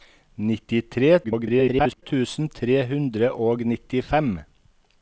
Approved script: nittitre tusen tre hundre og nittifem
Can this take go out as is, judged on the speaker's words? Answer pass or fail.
fail